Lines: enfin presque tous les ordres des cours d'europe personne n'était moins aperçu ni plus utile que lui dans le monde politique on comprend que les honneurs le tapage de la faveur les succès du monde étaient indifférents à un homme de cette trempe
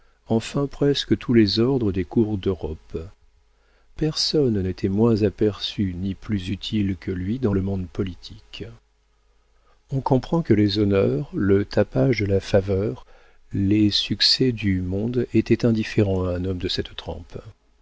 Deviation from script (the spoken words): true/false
false